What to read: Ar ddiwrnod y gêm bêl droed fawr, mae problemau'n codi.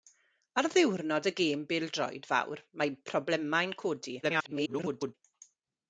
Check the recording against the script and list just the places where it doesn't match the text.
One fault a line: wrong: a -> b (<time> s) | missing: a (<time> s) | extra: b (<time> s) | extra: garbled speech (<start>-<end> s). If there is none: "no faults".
extra: garbled speech (4.2-5.1 s)